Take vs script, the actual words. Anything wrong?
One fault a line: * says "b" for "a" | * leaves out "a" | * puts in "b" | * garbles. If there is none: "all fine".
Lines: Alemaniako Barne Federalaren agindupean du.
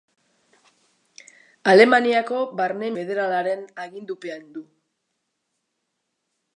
all fine